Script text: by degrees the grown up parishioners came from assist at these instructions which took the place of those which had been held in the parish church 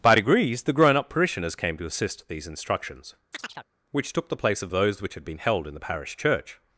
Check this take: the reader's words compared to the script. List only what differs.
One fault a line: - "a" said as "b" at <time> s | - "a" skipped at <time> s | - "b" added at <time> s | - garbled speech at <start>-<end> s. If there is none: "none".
- "from" said as "to" at 1.8 s